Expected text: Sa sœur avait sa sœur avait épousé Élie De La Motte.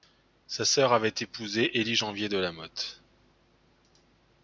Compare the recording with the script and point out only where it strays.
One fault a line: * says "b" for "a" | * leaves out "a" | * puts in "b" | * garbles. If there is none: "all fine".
* leaves out "sa sœur avait"
* puts in "Janvier"